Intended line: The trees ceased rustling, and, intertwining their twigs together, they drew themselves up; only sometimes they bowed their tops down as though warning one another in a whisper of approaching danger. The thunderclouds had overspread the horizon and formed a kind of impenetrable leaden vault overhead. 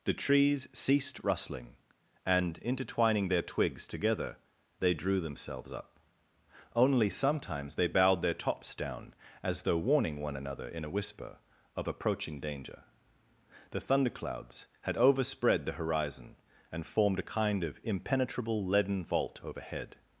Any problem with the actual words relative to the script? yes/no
no